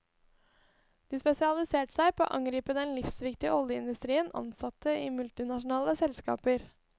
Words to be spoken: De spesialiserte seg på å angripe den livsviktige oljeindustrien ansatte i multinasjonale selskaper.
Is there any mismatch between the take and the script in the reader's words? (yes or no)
no